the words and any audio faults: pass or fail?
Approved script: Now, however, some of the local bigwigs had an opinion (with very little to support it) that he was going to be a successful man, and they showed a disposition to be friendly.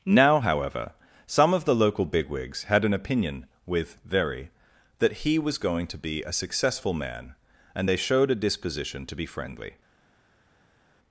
fail